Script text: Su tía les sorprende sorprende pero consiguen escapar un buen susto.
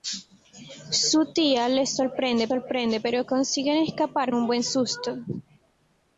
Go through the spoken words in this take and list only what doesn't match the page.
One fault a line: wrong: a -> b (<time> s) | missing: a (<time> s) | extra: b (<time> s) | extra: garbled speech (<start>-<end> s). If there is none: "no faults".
no faults